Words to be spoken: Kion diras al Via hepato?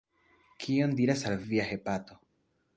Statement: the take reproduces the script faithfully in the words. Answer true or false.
true